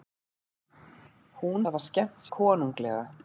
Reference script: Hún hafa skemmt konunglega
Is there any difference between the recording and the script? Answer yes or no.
no